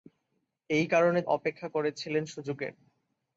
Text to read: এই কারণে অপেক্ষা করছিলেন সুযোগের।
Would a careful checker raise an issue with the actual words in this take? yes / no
no